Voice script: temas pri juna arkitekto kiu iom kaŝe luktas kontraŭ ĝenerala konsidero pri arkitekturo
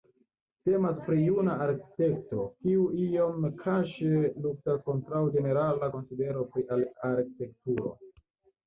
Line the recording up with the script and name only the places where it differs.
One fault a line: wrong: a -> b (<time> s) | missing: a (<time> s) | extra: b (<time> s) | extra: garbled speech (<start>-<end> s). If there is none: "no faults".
no faults